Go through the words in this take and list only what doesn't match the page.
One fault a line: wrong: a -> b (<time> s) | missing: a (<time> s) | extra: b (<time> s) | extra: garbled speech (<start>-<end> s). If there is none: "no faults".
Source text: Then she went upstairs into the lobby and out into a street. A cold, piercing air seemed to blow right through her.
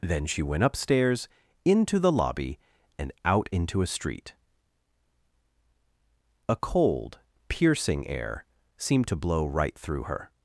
no faults